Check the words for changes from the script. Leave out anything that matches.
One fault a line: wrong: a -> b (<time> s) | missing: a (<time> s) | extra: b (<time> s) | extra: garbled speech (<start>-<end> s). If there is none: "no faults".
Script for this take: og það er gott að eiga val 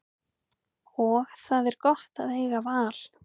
no faults